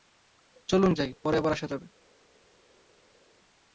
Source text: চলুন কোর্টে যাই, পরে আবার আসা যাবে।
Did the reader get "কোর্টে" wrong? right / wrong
wrong